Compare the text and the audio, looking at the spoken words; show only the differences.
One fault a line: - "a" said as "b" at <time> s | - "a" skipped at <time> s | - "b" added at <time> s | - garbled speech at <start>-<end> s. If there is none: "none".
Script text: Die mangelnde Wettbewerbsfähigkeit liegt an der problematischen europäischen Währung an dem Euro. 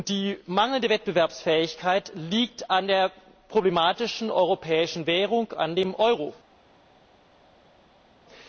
none